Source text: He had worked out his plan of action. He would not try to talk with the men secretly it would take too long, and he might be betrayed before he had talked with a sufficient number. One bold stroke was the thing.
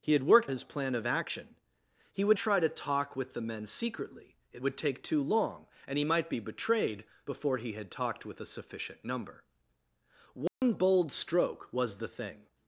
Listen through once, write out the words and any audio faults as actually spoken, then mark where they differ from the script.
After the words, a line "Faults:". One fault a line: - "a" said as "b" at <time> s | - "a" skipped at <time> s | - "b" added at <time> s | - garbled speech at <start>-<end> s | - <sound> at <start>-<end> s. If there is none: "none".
He had worked his plan of action. He would try to talk with the men secretly it would take too long, and he might be betrayed before he had talked with a sufficient number. One bold stroke was the thing.
Faults:
- "out" skipped at 0.5 s
- "not" skipped at 2.4 s
- dropout at 10.5-10.6 s